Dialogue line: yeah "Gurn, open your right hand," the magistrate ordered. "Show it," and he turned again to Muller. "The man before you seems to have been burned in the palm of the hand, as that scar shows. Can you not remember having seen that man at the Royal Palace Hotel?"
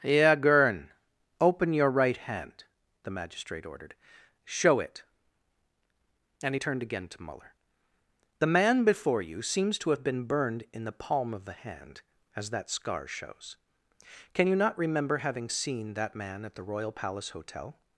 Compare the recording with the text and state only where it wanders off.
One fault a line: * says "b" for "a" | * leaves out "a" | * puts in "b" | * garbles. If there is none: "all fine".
all fine